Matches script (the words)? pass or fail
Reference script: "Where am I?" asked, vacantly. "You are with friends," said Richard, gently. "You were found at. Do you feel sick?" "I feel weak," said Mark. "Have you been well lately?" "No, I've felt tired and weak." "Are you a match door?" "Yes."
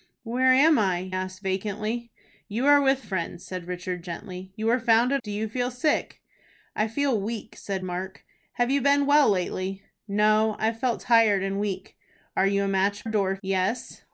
pass